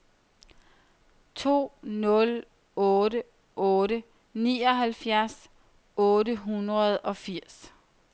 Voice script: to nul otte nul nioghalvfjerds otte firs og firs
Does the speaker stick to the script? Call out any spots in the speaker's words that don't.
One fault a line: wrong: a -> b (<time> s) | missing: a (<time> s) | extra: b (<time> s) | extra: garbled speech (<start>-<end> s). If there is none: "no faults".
wrong: nul -> otte (3.7 s)
wrong: firs -> hundrede (6.4 s)